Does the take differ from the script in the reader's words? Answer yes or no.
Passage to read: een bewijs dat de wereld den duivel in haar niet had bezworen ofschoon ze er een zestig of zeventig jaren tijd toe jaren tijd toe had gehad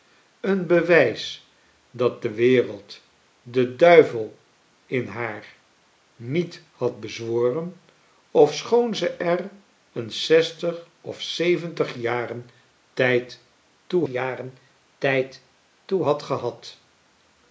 no